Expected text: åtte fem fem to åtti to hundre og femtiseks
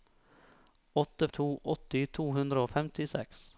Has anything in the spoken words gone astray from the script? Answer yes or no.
yes